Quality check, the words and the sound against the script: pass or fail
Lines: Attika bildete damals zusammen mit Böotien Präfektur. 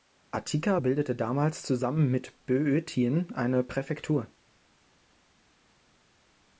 fail